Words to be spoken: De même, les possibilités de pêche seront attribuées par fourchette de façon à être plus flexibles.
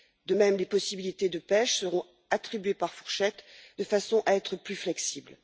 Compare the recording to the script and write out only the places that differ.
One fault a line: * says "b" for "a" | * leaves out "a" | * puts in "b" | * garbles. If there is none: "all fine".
all fine